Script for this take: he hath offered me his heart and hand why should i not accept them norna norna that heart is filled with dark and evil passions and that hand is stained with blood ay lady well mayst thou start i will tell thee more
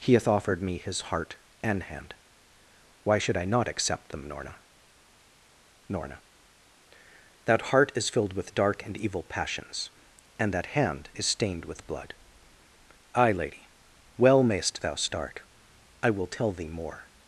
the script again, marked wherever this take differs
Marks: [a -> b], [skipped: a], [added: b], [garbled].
he hath offered me his heart and hand why should i not accept them norna norna that heart is filled with dark and evil passions and that hand is stained with blood ay lady well mayst thou start i will tell thee more